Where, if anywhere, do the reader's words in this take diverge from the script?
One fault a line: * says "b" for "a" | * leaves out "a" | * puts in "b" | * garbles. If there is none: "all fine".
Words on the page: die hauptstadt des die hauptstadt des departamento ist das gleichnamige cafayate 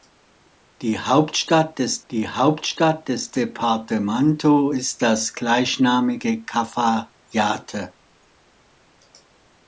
all fine